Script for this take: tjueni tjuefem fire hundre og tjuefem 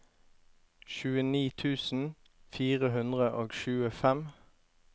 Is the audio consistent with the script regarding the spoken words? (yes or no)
no